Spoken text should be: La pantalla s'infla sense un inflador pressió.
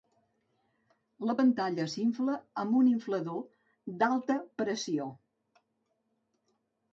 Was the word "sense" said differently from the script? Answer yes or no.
yes